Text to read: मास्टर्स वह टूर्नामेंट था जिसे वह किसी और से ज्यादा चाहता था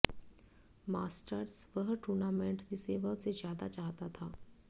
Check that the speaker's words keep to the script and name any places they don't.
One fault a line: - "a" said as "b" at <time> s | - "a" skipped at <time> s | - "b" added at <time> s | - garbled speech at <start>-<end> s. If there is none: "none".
- "था" skipped at 2.6 s
- "किसी और" skipped at 3.1 s